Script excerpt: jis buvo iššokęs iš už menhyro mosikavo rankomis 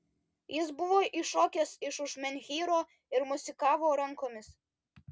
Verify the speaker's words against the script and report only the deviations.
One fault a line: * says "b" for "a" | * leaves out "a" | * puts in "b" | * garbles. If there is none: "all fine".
* puts in "ir"